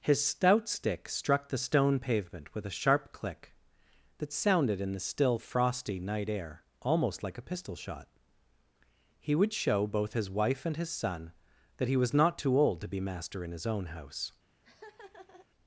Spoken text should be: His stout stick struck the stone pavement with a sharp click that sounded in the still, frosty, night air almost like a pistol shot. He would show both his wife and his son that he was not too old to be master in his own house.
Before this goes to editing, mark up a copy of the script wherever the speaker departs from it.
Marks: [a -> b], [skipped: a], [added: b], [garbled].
His stout stick struck the stone pavement with a sharp click that sounded in the still, frosty, night air almost like a pistol shot. He would show both his wife and his son that he was not too old to be master in his own house.